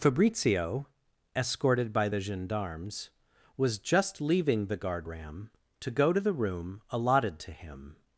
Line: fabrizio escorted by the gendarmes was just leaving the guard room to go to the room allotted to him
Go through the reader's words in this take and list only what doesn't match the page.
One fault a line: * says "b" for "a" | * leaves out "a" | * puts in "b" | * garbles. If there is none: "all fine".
* says "ram" for "room"